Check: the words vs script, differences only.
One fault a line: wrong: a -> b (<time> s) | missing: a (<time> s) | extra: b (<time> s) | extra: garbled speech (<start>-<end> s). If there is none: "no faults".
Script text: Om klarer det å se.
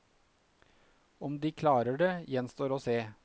extra: de (1.4 s)
extra: gjenstår (2.3 s)